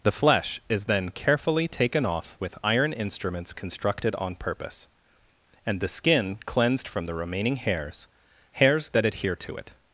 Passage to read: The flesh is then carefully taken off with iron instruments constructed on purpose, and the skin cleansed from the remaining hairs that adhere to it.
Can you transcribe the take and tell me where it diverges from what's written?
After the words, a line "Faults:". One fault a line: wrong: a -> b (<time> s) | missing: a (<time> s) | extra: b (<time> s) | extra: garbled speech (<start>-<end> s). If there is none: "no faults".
The flesh is then carefully taken off with iron instruments constructed on purpose, and the skin cleansed from the remaining hairs hairs that adhere to it.
Faults:
extra: hairs (8.5 s)